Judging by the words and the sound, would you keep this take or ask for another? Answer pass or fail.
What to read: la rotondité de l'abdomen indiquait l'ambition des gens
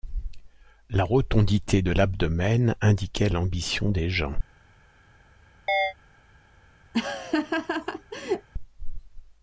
fail